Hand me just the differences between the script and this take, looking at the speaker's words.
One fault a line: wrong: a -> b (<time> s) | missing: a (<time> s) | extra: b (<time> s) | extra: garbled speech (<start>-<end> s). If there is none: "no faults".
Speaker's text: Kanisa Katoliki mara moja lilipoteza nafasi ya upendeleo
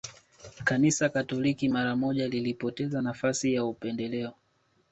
no faults